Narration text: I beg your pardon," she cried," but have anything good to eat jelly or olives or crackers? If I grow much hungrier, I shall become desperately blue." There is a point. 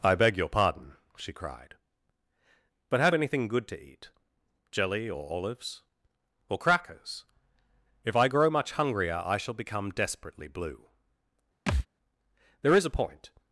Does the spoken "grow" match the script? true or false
true